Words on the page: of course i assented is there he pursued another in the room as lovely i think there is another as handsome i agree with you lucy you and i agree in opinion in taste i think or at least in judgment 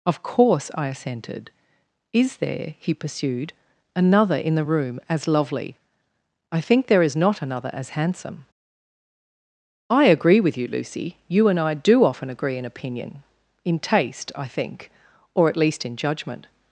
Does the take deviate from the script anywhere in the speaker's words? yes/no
yes